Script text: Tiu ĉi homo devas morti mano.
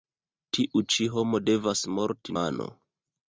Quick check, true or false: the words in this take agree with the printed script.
true